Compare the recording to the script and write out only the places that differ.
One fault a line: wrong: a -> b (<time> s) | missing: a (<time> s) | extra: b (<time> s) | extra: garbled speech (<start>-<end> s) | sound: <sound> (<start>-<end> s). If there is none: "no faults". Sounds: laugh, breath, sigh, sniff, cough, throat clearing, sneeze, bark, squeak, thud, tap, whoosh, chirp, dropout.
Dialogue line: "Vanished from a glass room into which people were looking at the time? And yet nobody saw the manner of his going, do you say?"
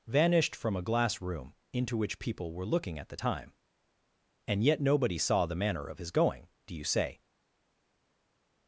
no faults